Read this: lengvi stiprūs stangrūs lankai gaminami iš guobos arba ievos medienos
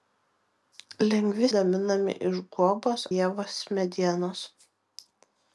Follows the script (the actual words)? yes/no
no